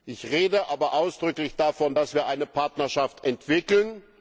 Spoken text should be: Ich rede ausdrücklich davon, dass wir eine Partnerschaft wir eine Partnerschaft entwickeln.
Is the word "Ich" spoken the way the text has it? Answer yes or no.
yes